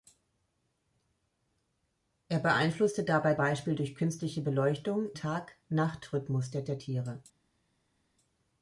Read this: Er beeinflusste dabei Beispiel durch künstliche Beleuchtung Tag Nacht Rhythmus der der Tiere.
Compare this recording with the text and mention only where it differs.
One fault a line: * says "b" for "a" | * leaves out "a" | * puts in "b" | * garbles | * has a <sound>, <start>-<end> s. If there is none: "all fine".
all fine